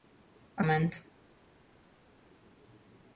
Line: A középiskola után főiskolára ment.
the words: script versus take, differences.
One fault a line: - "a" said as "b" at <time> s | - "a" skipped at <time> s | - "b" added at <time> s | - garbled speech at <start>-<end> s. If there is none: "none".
- "középiskola után főiskolára" skipped at 0.6 s